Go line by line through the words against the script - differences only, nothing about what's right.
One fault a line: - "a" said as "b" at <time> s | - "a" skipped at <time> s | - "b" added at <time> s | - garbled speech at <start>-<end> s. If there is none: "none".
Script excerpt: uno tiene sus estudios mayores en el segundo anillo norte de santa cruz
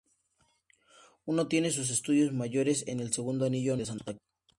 - "norte" skipped at 3.8 s